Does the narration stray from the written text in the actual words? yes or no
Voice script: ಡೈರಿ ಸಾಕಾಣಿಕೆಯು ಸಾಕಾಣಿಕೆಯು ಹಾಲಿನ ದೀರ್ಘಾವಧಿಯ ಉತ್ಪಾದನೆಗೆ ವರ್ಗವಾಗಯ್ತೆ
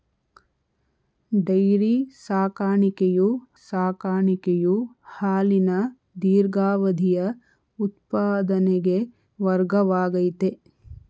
no